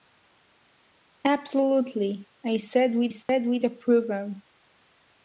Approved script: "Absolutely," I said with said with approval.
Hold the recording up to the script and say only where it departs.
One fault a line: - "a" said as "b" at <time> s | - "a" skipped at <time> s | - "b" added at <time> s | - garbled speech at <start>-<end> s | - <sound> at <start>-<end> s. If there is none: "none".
- dropout at 3.2-3.3 s